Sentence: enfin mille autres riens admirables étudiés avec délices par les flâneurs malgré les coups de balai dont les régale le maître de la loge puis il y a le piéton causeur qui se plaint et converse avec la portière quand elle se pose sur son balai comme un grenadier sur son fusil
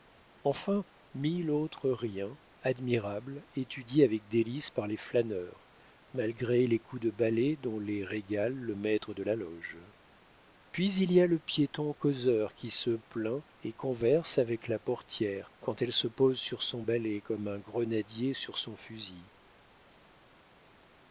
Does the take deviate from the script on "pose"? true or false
false